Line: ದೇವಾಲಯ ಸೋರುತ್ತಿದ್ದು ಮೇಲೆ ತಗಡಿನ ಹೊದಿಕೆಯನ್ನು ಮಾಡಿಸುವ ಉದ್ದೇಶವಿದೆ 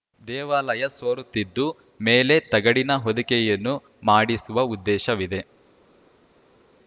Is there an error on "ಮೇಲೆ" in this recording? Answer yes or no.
no